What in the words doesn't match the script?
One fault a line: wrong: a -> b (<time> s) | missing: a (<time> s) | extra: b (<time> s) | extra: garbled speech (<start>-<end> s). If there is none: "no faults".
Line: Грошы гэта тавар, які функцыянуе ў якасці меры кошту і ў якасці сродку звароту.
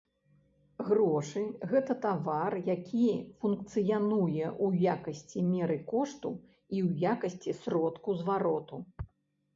no faults